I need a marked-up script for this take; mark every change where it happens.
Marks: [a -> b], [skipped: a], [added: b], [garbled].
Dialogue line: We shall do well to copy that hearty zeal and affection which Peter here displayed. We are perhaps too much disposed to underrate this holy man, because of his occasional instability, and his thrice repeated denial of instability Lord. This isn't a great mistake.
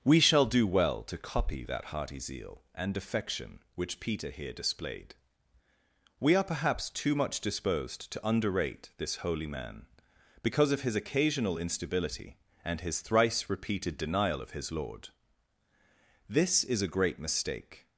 We shall do well to copy that hearty zeal and affection which Peter here displayed. We are perhaps too much disposed to underrate this holy man, because of his occasional instability, and his thrice repeated denial of [instability -> his] Lord. This [isn't -> is] a great mistake.